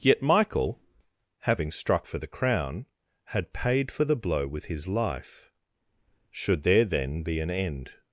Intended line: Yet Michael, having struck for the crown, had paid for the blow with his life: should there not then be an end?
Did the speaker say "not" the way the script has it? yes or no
no